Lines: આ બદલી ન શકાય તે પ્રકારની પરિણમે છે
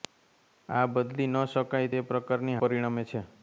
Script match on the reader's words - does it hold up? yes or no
yes